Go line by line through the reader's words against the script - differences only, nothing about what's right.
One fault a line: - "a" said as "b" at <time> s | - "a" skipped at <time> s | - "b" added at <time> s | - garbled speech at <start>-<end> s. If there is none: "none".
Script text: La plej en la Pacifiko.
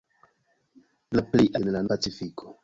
none